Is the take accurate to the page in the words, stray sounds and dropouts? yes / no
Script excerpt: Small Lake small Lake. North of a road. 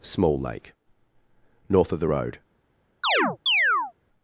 no